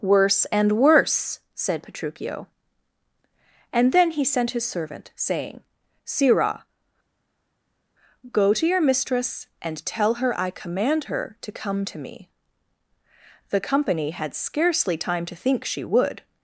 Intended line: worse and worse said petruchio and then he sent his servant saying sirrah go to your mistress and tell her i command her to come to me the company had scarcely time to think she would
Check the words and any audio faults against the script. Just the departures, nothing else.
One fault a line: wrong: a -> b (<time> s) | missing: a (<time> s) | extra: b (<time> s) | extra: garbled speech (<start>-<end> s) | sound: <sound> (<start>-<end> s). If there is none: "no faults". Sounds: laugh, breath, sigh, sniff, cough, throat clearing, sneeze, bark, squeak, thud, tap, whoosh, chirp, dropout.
no faults